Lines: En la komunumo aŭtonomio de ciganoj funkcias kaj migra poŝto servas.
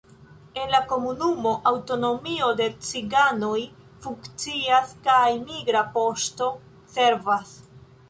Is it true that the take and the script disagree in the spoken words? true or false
false